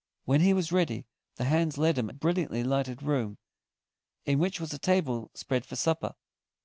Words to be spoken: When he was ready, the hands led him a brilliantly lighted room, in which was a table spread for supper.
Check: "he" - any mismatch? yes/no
no